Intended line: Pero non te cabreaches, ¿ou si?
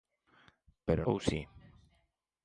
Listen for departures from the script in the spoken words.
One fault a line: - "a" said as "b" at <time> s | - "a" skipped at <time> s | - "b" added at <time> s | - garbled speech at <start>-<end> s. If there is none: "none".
- "non te cabreaches" skipped at 1.0 s